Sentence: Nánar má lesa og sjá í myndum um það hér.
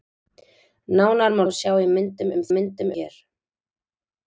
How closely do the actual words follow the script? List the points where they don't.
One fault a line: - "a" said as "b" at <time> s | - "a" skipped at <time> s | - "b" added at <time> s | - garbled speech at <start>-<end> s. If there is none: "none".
- "lesa" skipped at 1.4 s
- "það" said as "myndum" at 2.5 s